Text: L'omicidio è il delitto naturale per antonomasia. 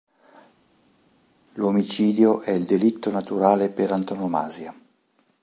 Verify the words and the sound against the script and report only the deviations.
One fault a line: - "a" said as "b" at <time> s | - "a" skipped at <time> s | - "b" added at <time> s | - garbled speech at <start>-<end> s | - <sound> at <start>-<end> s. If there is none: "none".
none